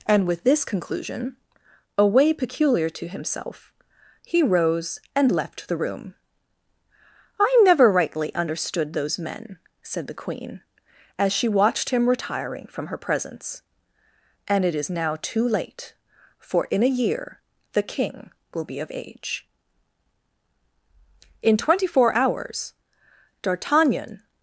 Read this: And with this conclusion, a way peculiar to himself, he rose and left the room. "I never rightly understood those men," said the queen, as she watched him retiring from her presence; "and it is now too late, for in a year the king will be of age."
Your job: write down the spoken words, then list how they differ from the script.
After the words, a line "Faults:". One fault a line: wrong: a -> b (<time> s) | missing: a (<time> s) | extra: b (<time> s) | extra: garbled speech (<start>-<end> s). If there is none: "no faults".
And with this conclusion, a way peculiar to himself, he rose and left the room. "I never rightly understood those men," said the queen, as she watched him retiring from her presence; "and it is now too late, for in a year the king will be of age." In twenty four hours D'Artagnan
Faults:
extra: In twenty four hours D'Artagnan (21.4 s)